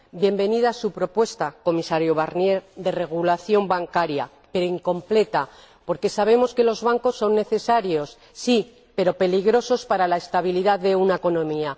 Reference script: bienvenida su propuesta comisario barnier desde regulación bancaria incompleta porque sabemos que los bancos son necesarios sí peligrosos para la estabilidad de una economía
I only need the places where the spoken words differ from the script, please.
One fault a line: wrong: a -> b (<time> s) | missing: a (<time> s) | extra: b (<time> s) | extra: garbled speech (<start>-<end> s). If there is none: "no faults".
wrong: desde -> de (2.8 s)
extra: pero (4.5 s)
extra: pero (8.9 s)